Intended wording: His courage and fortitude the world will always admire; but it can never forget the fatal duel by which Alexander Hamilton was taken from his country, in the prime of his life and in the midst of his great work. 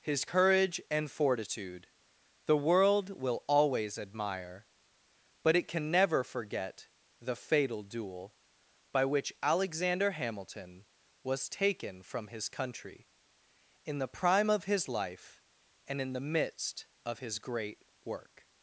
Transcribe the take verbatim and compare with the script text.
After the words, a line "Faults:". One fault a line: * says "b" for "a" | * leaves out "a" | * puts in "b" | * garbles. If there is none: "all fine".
His courage and fortitude the world will always admire; but it can never forget the fatal duel by which Alexander Hamilton was taken from his country, in the prime of his life and in the midst of his great work.
Faults:
all fine